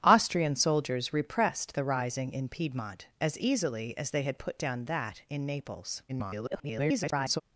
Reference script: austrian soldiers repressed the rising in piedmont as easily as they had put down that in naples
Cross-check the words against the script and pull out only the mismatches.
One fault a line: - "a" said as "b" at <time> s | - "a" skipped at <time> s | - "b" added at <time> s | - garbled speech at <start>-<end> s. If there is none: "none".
- garbled speech at 6.1-7.4 s